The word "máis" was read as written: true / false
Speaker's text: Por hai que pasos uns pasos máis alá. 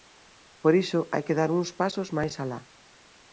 true